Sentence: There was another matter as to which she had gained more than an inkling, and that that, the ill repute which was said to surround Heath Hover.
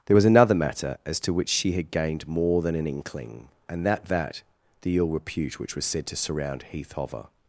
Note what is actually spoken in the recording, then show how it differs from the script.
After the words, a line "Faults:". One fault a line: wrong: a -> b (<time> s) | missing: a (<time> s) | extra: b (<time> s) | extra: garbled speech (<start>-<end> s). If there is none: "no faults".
There was another matter as to which she had gained more than an inkling, and that that, the ill repute which was said to surround Heath Hover.
Faults:
no faults